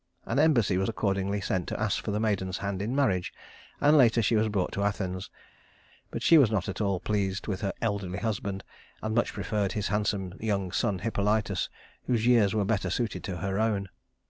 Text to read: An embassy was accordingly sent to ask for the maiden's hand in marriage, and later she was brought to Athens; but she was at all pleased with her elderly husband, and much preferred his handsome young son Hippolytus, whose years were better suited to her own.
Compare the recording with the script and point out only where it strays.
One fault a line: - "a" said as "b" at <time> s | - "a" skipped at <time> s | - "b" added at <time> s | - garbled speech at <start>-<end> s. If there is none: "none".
- "not" added at 6.5 s